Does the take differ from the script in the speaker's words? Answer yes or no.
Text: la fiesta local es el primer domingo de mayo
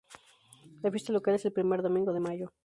no